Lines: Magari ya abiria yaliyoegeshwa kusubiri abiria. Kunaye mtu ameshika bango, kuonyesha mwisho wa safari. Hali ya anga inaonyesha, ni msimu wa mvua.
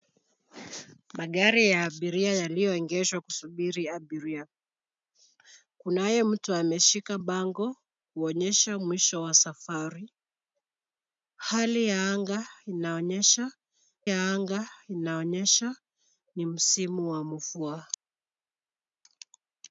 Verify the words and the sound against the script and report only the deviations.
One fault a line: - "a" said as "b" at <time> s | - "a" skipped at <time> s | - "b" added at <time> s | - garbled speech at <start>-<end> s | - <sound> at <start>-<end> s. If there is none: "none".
- "ya anga inaonyesha" added at 14.1 s